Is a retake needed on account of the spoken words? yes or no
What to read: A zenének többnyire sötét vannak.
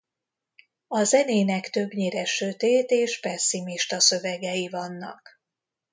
yes